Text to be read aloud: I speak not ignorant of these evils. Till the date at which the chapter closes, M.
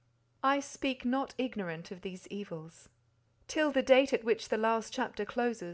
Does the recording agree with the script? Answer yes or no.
no